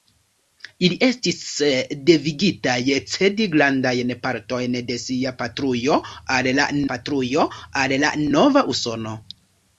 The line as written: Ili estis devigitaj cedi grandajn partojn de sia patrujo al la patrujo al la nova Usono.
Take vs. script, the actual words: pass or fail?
pass